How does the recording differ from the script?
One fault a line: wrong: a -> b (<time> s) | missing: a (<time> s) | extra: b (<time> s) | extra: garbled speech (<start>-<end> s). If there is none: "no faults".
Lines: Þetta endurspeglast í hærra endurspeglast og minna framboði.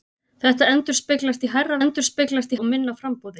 no faults